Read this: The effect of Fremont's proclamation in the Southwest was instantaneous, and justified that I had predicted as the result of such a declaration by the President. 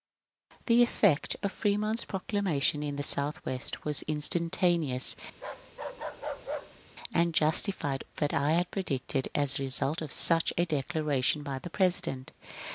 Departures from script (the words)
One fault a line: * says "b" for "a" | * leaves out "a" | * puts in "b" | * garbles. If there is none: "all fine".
all fine